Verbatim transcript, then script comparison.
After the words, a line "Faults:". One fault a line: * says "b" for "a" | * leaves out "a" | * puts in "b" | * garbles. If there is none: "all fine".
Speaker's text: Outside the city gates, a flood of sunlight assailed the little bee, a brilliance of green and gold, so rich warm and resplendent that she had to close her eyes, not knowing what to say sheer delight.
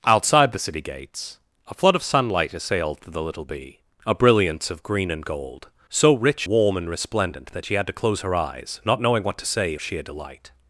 Outside the city gates, a flood of sunlight assailed the little bee, a brilliance of green and gold, so rich warm and resplendent that she had to close her eyes, not knowing what to say sheer delight.
Faults:
all fine